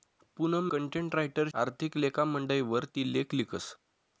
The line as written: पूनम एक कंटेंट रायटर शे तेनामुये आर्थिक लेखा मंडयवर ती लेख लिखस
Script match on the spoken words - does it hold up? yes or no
no